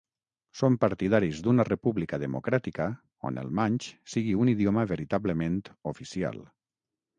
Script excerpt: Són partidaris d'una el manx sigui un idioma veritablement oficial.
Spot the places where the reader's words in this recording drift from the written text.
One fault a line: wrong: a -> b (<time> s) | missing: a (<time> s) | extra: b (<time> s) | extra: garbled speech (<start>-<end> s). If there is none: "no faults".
extra: república democràtica on (1.7 s)